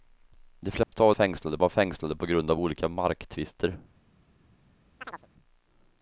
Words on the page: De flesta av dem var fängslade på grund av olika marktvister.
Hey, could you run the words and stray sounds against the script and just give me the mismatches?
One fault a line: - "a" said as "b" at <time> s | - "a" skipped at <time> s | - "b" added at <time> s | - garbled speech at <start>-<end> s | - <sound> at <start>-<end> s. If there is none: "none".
- dropout at 0.8-0.9 s
- "dem" said as "fängslade" at 1.1 s
- chirp at 5.0-5.3 s